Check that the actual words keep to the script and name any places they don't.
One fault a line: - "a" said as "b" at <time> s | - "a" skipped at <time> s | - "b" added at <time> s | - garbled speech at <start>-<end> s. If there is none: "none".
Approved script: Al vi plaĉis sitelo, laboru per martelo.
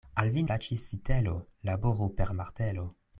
none